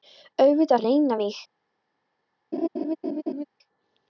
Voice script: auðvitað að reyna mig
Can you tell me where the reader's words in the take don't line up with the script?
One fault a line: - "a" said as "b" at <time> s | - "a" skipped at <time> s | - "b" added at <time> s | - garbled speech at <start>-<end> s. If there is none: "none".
none